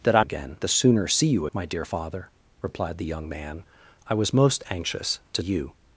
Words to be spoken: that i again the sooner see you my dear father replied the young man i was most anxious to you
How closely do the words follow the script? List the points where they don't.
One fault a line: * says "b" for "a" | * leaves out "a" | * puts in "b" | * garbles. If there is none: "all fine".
all fine